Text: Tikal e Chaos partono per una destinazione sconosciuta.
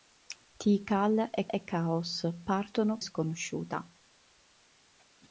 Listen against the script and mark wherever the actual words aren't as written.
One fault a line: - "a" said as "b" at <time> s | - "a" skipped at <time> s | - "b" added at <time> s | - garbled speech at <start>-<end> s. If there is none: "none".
- "e" added at 1.5 s
- "per una destinazione" skipped at 3.0 s